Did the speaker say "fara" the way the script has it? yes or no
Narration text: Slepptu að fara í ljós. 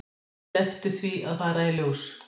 yes